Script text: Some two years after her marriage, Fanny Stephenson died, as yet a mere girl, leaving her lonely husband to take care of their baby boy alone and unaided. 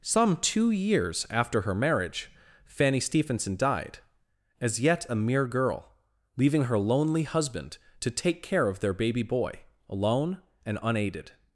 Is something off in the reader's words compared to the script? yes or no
no